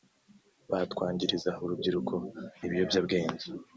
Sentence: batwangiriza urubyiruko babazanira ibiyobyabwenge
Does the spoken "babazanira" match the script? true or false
false